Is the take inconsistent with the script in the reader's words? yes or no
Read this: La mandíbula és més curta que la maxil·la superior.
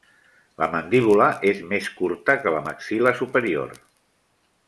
no